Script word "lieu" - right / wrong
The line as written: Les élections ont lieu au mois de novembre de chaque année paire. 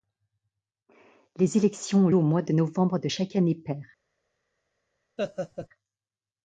wrong